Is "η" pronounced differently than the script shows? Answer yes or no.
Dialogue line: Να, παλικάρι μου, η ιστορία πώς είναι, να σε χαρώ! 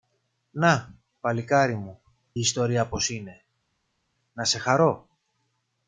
yes